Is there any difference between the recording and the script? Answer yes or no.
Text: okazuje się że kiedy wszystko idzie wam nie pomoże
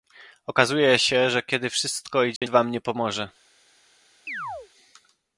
no